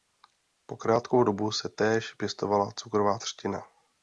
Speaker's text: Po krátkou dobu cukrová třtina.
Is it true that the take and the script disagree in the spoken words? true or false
true